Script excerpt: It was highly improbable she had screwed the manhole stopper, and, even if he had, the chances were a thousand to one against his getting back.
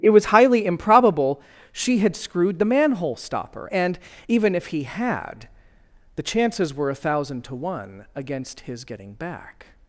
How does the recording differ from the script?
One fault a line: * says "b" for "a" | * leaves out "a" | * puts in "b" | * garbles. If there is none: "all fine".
all fine